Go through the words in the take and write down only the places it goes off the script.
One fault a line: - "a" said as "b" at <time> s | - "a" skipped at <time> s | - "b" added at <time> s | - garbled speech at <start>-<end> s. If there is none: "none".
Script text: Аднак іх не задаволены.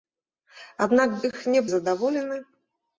none